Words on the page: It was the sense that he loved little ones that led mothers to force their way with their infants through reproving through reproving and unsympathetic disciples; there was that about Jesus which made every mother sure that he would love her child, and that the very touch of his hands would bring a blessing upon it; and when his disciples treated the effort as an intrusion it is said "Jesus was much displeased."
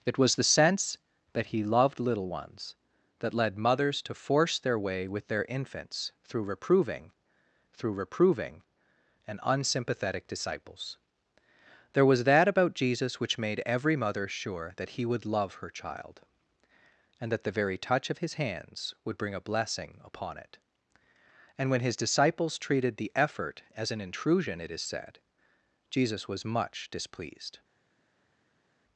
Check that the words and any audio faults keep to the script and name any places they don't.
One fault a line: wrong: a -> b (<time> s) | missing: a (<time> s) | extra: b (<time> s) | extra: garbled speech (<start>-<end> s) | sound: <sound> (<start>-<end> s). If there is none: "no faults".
no faults